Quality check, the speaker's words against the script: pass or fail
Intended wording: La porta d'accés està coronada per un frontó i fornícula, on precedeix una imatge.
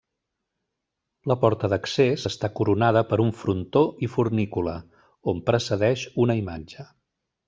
pass